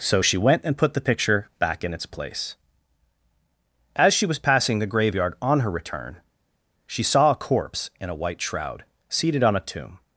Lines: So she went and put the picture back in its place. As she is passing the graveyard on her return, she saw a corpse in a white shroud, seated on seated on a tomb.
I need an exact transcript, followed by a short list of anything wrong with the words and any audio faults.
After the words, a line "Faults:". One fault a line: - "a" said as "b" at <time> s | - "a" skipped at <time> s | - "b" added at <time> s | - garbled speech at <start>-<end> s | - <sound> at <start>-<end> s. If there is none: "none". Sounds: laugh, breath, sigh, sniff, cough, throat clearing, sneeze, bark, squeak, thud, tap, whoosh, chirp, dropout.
So she went and put the picture back in its place. As she was passing the graveyard on her return, she saw a corpse in a white shroud, seated on a tomb.
Faults:
- "is" said as "was" at 4.3 s
- "seated on" skipped at 9.5 s